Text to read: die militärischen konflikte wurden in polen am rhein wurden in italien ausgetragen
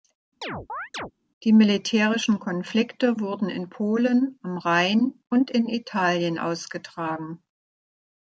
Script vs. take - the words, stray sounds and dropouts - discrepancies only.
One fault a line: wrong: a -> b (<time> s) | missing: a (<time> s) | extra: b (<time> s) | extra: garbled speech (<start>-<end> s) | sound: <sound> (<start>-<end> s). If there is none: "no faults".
sound: chirp (0.4-1.1 s)
wrong: wurden -> und (5.3 s)